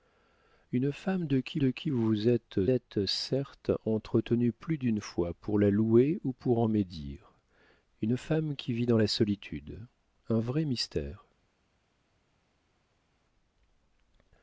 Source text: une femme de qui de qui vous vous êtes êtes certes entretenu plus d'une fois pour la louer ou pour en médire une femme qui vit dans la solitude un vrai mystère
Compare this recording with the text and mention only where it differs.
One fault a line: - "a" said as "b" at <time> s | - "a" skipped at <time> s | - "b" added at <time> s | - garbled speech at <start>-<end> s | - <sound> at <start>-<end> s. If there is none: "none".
none